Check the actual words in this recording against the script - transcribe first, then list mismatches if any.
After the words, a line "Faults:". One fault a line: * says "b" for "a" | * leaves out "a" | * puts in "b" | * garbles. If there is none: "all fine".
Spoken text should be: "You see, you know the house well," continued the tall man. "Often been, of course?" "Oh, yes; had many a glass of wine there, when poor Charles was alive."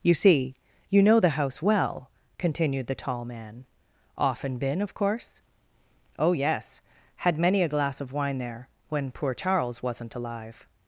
"You see, you know the house well," continued the tall man. "Often been, of course?" "Oh, yes; had many a glass of wine there, when poor Charles wasn't alive."
Faults:
* says "wasn't" for "was"